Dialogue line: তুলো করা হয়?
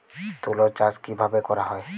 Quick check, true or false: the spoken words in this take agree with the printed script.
false